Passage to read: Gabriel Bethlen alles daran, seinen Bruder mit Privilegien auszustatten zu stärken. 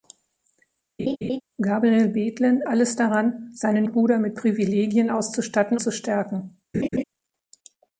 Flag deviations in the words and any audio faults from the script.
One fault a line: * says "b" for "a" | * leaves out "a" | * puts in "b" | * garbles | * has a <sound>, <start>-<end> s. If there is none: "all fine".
* has a laugh, 1.0-1.4 s
* has a laugh, 6.7-7.0 s